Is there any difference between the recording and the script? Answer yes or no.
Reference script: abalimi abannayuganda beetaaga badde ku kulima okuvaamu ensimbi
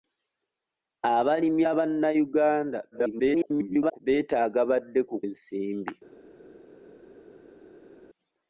yes